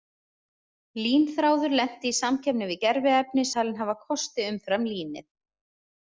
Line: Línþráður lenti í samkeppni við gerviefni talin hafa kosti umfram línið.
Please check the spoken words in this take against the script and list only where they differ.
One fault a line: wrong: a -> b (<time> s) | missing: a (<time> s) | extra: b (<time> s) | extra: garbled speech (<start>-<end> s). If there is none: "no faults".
no faults